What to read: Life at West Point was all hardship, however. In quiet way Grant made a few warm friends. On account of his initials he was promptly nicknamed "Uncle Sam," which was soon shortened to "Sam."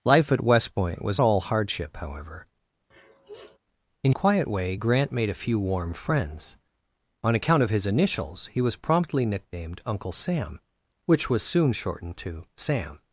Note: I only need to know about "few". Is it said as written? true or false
true